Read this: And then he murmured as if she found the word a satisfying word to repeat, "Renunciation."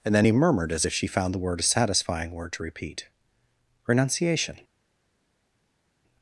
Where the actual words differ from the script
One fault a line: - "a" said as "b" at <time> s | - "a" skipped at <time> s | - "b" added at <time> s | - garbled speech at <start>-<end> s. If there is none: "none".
none